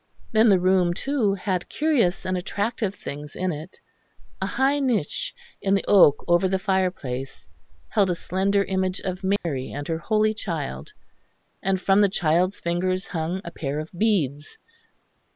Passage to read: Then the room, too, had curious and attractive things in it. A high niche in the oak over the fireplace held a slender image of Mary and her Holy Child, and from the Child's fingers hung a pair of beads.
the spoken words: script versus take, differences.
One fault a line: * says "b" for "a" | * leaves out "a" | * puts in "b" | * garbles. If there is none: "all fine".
all fine